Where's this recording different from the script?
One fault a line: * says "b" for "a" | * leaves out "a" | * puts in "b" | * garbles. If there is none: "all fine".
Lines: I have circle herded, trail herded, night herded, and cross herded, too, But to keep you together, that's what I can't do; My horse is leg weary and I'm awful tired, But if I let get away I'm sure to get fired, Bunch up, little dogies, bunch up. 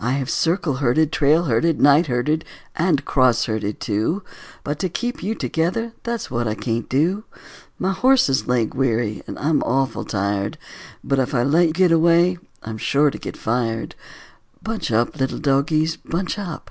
all fine